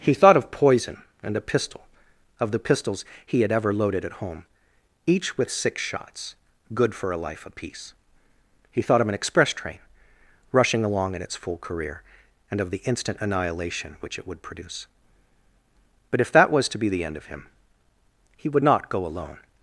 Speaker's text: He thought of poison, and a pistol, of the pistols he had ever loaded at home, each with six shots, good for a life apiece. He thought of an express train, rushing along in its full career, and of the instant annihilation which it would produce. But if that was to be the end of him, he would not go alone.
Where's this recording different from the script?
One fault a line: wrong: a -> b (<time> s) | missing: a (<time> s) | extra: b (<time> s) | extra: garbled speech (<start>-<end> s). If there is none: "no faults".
no faults